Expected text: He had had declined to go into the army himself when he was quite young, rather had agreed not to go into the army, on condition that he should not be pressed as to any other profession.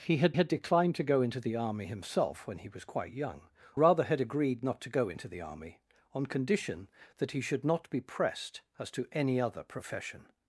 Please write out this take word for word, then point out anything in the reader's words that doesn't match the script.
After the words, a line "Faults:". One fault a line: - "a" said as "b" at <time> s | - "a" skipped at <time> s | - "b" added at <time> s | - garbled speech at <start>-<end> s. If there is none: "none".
He had had declined to go into the army himself when he was quite young, rather had agreed not to go into the army, on condition that he should not be pressed as to any other profession.
Faults:
none